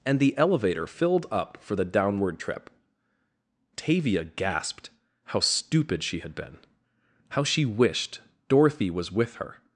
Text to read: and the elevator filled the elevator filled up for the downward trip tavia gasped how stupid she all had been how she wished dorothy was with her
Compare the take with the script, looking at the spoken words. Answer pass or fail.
fail